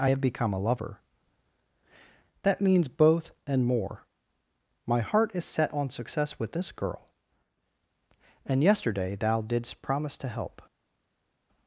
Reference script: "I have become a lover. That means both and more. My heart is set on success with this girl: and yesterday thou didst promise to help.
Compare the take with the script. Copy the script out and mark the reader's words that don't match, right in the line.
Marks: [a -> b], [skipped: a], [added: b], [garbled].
"I have become a lover. That means both and more. My heart is set on success with this girl: and yesterday thou didst promise to help.